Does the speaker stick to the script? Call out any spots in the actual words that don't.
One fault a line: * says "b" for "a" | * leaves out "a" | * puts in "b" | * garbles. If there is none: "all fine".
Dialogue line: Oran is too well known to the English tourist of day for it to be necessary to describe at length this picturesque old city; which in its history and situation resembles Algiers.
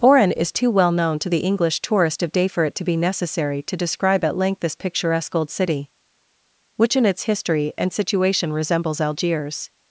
all fine